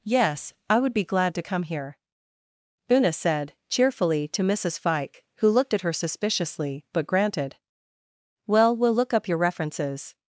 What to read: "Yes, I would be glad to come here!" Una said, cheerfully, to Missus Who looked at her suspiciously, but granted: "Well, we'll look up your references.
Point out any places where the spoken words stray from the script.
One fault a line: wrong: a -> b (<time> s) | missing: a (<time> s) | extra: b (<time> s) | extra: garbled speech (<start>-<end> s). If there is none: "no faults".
extra: Fike (4.8 s)